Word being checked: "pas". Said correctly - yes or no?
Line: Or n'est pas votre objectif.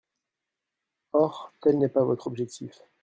yes